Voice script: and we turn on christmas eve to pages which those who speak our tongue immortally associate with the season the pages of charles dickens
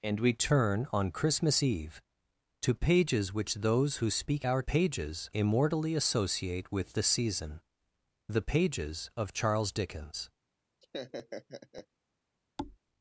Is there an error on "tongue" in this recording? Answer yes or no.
yes